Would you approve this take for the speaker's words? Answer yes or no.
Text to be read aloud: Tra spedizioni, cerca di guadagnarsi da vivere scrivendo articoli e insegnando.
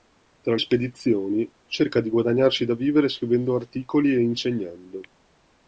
yes